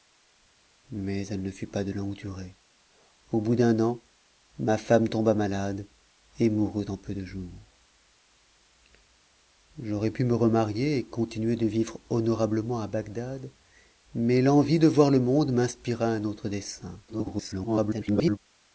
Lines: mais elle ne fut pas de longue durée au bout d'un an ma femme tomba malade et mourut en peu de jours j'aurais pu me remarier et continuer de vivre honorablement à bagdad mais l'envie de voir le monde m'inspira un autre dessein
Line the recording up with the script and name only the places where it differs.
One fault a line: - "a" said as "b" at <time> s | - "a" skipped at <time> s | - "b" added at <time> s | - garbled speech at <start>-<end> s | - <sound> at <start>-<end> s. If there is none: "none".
- garbled speech at 17.1-18.4 s